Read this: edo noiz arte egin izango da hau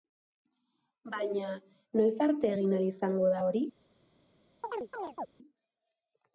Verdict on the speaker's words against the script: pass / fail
fail